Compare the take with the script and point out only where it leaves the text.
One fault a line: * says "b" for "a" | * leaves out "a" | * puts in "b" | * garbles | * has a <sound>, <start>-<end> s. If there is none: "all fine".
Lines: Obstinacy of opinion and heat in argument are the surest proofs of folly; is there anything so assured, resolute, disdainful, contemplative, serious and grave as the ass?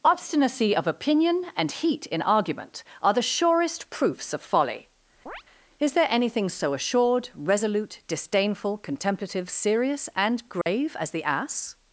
* has a chirp, 5.3-5.4 s
* has a dropout, 10.6-10.7 s